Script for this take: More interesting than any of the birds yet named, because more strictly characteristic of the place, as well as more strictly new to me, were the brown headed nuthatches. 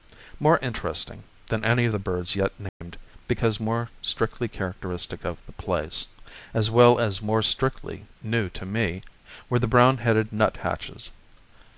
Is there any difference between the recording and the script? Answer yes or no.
no